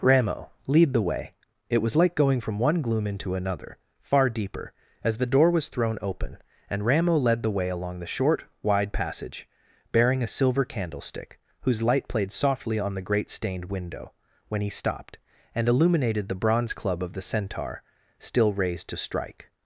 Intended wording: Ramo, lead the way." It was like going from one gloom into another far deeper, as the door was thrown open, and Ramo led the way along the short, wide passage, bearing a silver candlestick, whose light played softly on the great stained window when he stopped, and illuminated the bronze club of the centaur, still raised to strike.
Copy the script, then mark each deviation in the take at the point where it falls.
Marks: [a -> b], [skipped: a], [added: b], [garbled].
Ramo, lead the way." It was like going from one gloom into another far deeper, as the door was thrown open, and Ramo led the way along the short, wide passage, bearing a silver candlestick, whose light played softly on the great stained window when he stopped, and illuminated the bronze club of the centaur, still raised to strike.